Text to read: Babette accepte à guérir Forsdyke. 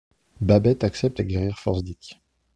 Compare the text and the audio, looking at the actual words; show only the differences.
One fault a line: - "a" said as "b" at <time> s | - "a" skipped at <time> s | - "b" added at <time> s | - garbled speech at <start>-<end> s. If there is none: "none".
none